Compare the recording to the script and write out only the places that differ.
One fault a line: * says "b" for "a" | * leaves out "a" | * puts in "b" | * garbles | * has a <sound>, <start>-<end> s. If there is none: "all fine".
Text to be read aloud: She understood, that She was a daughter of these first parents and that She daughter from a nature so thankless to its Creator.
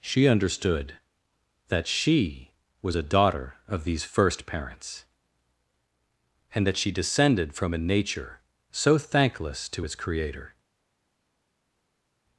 * says "descended" for "daughter"